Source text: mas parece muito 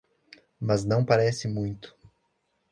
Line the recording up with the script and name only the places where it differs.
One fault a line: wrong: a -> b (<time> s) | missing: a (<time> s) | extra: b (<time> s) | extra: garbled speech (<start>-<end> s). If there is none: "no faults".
extra: não (0.8 s)